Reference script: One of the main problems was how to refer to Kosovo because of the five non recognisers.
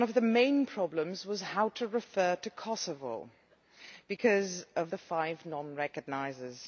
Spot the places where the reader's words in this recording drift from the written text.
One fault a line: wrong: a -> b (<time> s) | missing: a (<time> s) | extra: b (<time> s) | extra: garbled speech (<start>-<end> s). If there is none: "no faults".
no faults